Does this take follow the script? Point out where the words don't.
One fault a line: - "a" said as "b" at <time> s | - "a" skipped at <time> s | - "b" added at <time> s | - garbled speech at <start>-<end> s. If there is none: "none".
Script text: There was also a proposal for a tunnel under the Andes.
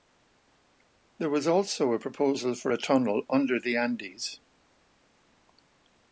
none